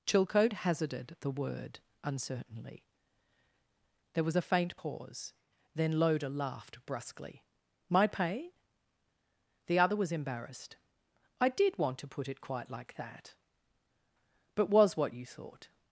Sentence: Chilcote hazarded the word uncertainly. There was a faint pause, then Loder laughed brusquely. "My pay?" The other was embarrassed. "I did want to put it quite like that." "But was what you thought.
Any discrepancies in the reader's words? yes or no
no